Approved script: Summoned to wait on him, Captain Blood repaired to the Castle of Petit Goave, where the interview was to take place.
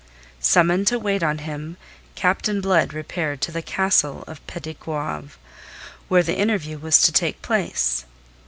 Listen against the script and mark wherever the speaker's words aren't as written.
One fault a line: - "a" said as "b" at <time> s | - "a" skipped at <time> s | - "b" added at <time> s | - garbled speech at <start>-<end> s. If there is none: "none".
none